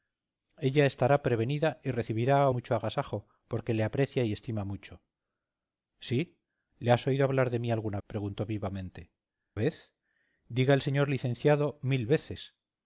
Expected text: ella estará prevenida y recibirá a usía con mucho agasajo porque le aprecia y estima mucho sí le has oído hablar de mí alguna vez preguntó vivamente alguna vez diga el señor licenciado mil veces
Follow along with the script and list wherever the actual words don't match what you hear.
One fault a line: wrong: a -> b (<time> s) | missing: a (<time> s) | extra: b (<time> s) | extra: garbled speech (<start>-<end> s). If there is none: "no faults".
missing: usía con (2.5 s)
missing: vez (8.0 s)
missing: alguna (9.1 s)